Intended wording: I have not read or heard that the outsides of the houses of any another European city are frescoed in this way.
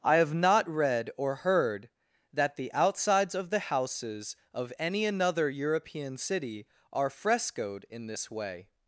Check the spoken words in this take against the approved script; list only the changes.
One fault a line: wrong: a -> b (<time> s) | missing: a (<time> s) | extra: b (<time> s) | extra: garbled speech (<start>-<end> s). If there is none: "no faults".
no faults